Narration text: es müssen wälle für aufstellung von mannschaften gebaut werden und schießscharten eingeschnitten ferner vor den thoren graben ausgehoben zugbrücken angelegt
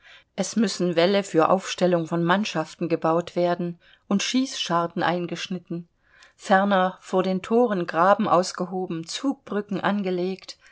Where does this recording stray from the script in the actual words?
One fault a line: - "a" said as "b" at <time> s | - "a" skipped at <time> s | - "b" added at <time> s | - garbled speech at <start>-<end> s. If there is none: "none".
none